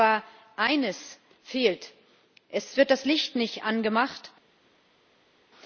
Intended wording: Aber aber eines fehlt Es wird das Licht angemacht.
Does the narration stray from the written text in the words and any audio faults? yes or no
yes